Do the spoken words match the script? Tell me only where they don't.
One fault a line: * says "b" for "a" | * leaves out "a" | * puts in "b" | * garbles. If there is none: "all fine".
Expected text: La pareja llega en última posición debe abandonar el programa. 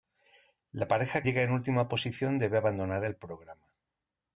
all fine